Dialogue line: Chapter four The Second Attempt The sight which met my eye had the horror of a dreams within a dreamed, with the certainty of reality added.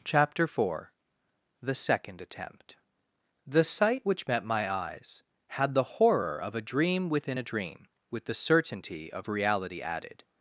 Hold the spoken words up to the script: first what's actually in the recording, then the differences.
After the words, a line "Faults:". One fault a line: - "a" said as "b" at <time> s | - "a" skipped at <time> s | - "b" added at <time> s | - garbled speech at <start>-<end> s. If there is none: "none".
Chapter four The Second Attempt The sight which met my eyes had the horror of a dream within a dream, with the certainty of reality added.
Faults:
- "eye" said as "eyes" at 4.7 s
- "dreams" said as "dream" at 6.6 s
- "dreamed" said as "dream" at 7.4 s